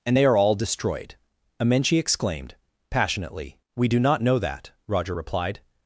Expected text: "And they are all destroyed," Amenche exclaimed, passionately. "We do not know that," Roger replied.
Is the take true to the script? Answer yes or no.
yes